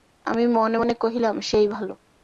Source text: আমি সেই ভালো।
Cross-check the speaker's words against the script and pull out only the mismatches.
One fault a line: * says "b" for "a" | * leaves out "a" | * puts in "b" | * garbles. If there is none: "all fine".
* puts in "মনে মনে কহিলাম"